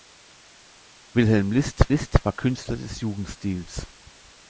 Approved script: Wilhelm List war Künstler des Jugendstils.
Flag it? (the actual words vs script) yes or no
yes